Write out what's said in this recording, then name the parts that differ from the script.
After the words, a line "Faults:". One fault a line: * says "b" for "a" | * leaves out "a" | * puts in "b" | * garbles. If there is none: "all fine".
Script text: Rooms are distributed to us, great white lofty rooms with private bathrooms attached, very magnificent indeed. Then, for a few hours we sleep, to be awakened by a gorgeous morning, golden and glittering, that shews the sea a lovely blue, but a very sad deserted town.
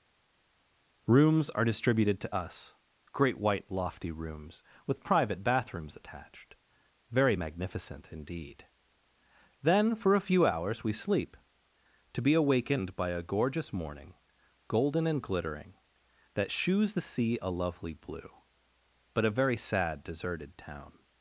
Rooms are distributed to us, great white lofty rooms with private bathrooms attached, very magnificent indeed. Then, for a few hours we sleep, to be awakened by a gorgeous morning, golden and glittering, that shews the sea a lovely blue, but a very sad deserted town.
Faults:
all fine